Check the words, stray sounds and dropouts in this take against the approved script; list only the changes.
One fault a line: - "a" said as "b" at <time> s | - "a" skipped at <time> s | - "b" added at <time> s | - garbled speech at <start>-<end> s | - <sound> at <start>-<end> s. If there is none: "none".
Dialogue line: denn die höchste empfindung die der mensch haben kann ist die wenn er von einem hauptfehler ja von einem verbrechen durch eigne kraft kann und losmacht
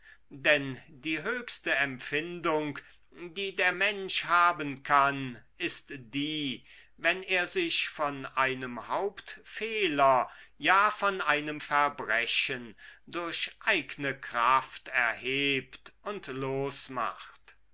- "sich" added at 7.5 s
- "kann" said as "erhebt" at 14.9 s